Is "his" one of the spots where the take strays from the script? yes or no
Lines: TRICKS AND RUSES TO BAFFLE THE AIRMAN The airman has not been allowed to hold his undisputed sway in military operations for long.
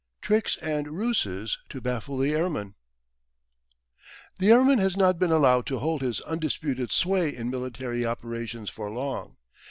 no